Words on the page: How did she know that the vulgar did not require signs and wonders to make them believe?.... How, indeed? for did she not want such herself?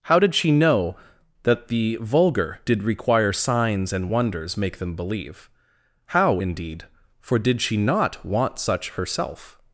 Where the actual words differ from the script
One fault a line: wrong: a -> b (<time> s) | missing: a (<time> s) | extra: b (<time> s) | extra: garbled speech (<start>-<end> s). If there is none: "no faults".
missing: not (2.8 s)
missing: to (4.6 s)